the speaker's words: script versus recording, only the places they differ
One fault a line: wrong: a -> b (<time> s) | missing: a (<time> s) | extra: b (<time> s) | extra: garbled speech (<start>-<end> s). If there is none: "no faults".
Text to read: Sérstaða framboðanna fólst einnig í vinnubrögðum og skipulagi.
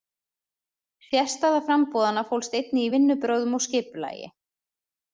no faults